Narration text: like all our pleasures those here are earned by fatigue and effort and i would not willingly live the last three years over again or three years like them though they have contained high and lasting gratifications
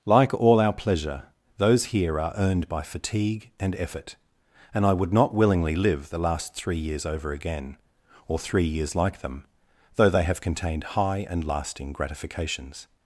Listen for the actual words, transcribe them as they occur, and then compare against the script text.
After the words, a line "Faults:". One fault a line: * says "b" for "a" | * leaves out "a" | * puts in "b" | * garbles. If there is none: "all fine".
like all our pleasure those here are earned by fatigue and effort and i would not willingly live the last three years over again or three years like them though they have contained high and lasting gratifications
Faults:
* says "pleasure" for "pleasures"